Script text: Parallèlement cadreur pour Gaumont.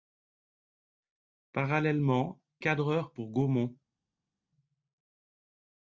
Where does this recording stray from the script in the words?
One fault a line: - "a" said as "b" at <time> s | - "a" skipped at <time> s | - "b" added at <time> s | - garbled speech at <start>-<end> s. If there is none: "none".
none